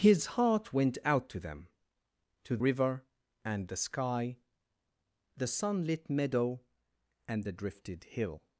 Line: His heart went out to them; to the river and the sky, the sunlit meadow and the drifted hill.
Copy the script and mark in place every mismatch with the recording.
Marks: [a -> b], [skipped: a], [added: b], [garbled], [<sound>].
His heart went out to them; to [skipped: the] river and the sky, the sunlit meadow and the drifted hill.